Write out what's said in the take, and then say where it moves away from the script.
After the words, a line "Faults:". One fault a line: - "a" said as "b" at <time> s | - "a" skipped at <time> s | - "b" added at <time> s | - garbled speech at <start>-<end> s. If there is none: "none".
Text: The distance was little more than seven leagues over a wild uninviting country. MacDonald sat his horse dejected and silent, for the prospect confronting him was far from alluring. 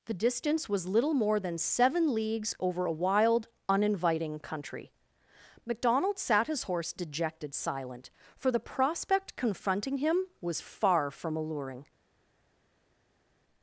The distance was little more than seven leagues over a wild uninviting country. MacDonald sat his horse dejected silent, for the prospect confronting him was far from alluring.
Faults:
- "and" skipped at 7.5 s